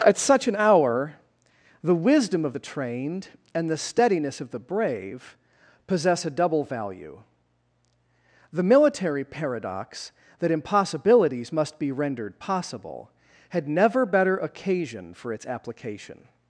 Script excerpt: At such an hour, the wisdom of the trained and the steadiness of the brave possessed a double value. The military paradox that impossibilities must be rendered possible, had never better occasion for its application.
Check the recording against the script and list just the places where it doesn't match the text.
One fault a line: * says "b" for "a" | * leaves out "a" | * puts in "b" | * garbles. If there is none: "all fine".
* says "possess" for "possessed"